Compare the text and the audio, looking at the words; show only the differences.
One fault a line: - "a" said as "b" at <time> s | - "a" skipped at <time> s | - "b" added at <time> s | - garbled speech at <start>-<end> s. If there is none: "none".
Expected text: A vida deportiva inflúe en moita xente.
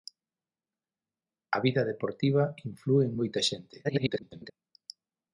- garbled speech at 3.8-4.5 s